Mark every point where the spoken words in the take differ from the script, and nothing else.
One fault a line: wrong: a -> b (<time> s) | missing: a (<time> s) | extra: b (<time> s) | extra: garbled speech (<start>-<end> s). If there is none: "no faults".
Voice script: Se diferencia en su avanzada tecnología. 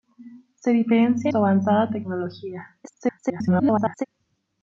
missing: en (1.3 s)
extra: garbled speech (2.8-4.0 s)